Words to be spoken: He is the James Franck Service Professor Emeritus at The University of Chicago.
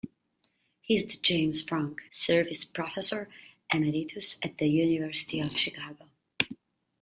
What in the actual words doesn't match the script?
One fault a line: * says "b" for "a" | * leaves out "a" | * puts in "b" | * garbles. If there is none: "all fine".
all fine